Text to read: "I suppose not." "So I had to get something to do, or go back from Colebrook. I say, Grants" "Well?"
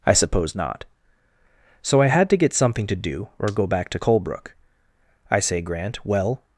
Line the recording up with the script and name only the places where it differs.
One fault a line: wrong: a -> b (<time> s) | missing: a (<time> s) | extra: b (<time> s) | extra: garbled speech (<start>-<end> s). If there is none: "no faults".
wrong: from -> to (3.9 s)
wrong: Grants -> Grant (5.6 s)